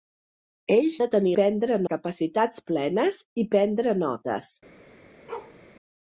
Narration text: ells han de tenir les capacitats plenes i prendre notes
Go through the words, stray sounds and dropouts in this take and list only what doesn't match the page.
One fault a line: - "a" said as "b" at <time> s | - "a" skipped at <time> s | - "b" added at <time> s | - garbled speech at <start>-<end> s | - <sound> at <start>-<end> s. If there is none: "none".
- "han" skipped at 1.0 s
- "les" said as "prendre" at 1.4 s
- bark at 5.3-5.6 s